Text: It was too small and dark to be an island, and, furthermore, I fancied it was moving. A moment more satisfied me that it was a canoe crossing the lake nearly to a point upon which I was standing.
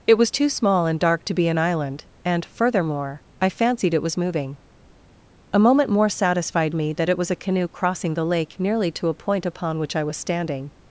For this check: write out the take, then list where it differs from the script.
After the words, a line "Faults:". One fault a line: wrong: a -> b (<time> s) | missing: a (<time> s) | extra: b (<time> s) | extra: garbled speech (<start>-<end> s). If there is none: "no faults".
It was too small and dark to be an island, and, furthermore, I fancied it was moving. A moment more satisfied me that it was a canoe crossing the lake nearly to a point upon which I was standing.
Faults:
no faults